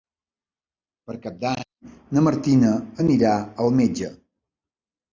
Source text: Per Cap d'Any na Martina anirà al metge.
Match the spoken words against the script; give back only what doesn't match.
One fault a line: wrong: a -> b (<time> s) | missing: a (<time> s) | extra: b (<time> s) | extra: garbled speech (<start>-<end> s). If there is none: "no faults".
no faults